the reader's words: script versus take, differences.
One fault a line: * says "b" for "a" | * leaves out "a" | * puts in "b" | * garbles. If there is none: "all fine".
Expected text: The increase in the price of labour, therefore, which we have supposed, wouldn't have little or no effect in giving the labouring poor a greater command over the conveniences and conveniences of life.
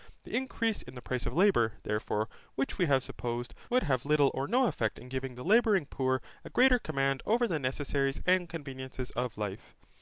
* says "would" for "wouldn't"
* says "necessaries" for "conveniences"